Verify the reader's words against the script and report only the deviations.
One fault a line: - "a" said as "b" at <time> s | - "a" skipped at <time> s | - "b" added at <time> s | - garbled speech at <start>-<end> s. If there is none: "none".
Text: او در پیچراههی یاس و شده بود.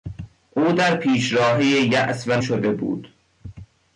none